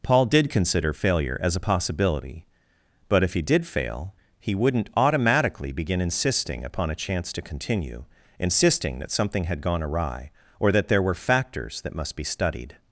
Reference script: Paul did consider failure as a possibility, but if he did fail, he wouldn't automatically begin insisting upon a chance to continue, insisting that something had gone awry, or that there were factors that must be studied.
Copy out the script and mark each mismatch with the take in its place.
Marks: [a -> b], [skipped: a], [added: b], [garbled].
Paul did consider failure as a possibility, but if he did fail, he wouldn't automatically begin insisting upon a chance to continue, insisting that something had gone awry, or that there were factors that must be studied.